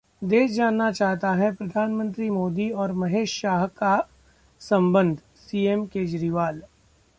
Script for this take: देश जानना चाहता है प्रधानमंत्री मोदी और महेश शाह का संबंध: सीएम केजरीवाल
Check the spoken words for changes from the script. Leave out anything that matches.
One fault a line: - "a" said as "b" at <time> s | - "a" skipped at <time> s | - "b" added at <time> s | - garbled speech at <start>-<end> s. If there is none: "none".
none